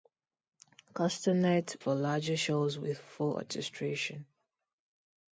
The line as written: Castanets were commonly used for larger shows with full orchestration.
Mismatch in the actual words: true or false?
true